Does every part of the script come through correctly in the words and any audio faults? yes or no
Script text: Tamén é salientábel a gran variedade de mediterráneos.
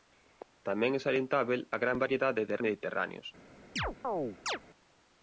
no